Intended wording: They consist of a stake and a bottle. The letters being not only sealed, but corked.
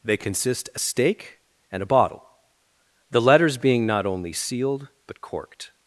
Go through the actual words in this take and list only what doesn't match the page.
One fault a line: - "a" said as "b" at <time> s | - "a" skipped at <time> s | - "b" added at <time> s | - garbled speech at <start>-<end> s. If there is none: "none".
- "of" skipped at 0.7 s